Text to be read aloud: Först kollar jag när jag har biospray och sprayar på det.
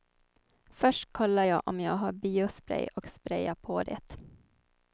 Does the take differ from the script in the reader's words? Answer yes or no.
yes